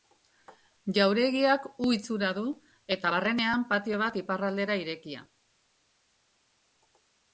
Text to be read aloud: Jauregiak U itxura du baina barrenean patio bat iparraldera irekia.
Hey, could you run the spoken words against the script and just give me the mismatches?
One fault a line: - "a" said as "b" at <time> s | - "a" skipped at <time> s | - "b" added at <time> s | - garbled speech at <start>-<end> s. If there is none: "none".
- "baina" said as "eta" at 3.0 s